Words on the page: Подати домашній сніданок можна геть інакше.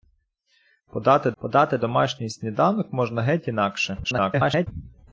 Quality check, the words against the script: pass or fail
fail